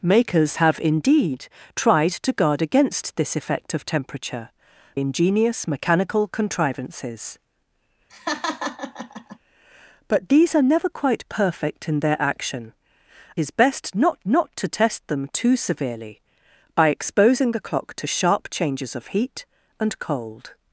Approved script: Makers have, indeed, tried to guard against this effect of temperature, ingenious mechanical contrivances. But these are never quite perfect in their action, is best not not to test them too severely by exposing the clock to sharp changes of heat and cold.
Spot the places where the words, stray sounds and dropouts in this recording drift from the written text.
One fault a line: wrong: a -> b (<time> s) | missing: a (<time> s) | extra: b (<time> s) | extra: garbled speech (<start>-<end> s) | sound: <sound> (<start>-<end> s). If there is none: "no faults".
sound: laugh (8.1-9.4 s)